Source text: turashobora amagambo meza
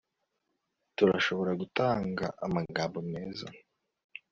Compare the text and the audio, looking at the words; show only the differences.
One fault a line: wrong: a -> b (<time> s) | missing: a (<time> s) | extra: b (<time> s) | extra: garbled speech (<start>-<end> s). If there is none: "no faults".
extra: gutanga (1.6 s)